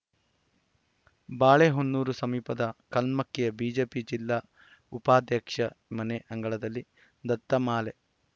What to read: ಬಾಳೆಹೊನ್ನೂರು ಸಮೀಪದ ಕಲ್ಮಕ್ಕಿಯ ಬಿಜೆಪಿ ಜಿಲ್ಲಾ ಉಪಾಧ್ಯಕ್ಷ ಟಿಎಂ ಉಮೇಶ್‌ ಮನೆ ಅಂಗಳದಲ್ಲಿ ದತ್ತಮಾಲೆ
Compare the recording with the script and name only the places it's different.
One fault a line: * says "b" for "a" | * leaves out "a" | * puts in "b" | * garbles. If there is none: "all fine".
* leaves out "ಟಿಎಂ ಉಮೇಶ್"